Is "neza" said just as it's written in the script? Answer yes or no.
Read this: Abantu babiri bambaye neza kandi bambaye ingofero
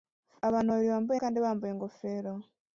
no